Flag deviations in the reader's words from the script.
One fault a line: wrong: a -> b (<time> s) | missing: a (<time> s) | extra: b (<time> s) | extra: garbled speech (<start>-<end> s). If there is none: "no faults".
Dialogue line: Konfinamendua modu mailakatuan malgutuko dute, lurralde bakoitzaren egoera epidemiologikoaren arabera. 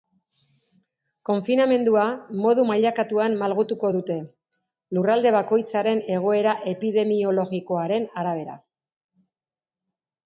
no faults